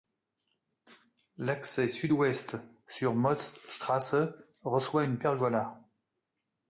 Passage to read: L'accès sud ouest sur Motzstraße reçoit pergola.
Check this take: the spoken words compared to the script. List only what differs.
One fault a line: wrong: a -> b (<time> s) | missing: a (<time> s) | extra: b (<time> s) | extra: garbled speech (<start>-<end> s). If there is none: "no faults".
extra: une (5.0 s)